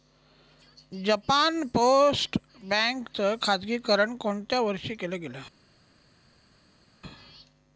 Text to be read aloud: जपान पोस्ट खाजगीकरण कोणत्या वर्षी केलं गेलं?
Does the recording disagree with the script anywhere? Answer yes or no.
yes